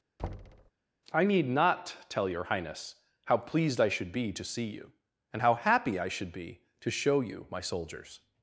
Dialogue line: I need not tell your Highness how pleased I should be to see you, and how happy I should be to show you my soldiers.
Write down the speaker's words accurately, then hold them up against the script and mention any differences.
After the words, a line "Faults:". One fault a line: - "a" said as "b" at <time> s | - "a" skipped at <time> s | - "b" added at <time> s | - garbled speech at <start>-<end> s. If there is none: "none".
I need not tell your Highness how pleased I should be to see you, and how happy I should be to show you my soldiers.
Faults:
none